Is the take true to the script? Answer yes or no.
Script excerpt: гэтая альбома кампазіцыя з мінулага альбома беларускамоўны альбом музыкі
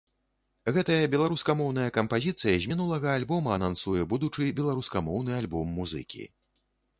no